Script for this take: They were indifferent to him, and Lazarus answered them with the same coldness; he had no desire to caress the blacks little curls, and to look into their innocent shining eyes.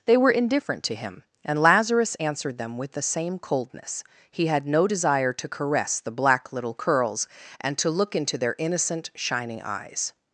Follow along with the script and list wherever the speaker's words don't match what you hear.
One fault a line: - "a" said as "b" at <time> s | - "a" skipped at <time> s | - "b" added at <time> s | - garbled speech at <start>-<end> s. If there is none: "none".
- "blacks" said as "black" at 6.1 s